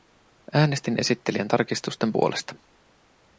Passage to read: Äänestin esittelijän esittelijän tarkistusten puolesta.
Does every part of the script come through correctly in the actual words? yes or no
no